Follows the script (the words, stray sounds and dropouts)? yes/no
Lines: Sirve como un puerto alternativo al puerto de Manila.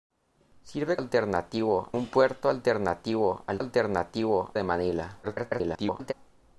no